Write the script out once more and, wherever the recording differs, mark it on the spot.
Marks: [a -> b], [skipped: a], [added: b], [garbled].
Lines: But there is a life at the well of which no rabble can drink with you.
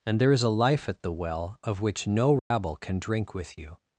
[But -> And] there is a life at the well of which no rabble can drink with you.